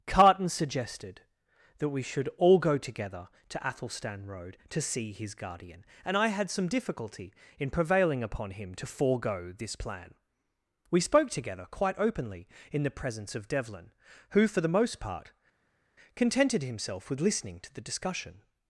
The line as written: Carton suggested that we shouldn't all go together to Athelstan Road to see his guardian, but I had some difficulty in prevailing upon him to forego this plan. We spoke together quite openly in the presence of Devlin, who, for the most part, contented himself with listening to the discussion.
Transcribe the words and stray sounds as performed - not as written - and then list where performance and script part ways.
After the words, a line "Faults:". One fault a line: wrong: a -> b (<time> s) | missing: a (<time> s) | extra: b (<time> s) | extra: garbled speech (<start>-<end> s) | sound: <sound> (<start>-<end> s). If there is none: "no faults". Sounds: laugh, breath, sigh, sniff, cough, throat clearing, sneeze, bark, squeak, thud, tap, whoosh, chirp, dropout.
Carton suggested that we should all go together to Athelstan Road to see his guardian, and I had some difficulty in prevailing upon him to forego this plan. We spoke together quite openly in the presence of Devlin, who, for the most part, contented himself with listening to the discussion.
Faults:
wrong: shouldn't -> should (2.0 s)
wrong: but -> and (6.0 s)